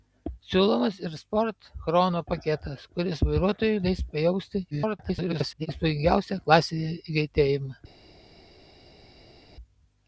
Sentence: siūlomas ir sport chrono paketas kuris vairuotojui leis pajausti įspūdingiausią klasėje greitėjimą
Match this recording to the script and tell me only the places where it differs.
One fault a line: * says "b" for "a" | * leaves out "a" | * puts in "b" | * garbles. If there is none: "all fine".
* garbles